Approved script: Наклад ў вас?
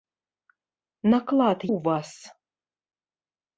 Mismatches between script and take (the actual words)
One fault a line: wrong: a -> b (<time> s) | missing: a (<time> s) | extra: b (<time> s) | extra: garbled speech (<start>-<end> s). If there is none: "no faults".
no faults